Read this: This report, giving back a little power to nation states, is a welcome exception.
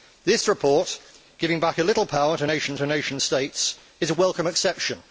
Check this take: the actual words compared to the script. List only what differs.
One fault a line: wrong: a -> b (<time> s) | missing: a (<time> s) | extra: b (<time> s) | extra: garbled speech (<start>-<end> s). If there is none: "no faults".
extra: to nation (2.8 s)